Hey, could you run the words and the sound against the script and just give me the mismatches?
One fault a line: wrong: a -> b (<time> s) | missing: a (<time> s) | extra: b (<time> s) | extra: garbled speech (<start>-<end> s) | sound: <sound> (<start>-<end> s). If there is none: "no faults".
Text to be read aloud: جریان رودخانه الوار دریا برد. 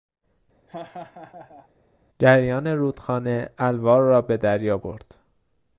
sound: laugh (0.7-1.7 s)
extra: را به (4.0 s)